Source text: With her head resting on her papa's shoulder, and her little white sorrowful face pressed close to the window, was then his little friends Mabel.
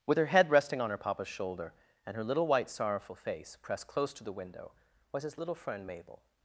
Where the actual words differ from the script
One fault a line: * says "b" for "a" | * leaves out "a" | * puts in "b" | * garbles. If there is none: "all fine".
* leaves out "then"
* says "friend" for "friends"